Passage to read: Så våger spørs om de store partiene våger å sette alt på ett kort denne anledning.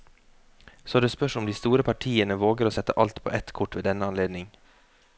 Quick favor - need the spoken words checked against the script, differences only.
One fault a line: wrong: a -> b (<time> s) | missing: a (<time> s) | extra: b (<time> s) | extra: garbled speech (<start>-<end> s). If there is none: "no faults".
wrong: våger -> det (1.0 s)
extra: ved (3.8 s)